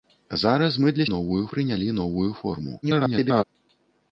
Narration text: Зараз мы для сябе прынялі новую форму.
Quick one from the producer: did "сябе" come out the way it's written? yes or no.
no